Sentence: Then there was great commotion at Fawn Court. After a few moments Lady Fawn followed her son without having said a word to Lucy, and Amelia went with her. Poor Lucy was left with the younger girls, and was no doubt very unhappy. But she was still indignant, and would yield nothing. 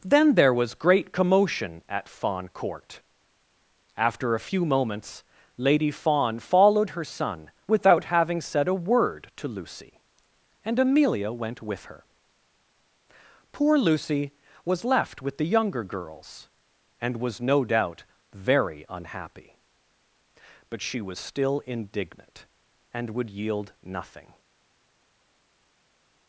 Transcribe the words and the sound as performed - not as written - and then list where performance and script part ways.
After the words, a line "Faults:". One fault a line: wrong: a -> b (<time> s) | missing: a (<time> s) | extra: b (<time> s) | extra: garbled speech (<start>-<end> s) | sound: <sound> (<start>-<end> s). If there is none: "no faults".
Then there was great commotion at Fawn Court. After a few moments Lady Fawn followed her son without having said a word to Lucy, and Amelia went with her. Poor Lucy was left with the younger girls, and was no doubt very unhappy. But she was still indignant, and would yield nothing.
Faults:
no faults